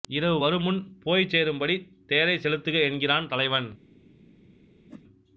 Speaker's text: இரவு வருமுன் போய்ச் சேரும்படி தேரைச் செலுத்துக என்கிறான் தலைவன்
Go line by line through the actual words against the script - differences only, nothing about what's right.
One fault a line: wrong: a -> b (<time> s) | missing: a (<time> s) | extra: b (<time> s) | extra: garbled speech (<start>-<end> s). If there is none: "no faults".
no faults